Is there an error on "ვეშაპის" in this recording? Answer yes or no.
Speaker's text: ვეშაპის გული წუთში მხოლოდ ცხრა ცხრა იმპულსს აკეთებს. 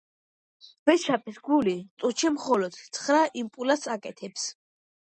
no